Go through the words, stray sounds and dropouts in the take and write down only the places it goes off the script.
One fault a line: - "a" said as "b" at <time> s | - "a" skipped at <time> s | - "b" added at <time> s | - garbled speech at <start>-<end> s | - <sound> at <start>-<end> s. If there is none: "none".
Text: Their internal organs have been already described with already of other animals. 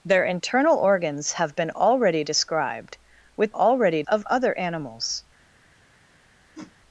- whoosh at 6.5-6.8 s